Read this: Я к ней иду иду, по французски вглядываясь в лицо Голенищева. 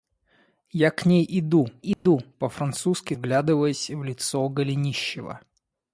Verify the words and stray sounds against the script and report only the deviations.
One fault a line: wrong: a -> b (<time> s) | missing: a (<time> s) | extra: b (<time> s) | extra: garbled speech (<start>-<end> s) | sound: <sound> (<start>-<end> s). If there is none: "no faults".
sound: dropout (1.9-2.1 s)